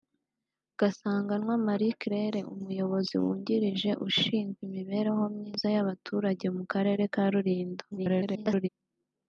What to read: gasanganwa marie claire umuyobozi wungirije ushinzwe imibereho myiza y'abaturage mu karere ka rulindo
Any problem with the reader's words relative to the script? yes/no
yes